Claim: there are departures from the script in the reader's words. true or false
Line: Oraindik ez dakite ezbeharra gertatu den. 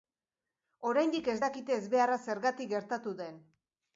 true